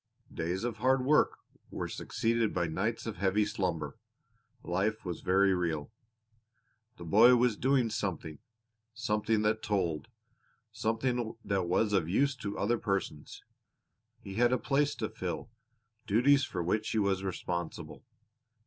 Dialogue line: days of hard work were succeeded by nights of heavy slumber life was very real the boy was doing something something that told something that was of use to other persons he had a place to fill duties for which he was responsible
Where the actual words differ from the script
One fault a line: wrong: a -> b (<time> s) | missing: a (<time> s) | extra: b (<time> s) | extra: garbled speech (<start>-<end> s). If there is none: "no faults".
no faults